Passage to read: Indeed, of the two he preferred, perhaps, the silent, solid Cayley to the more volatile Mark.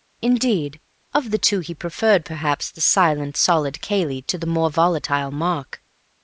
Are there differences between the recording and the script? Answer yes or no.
no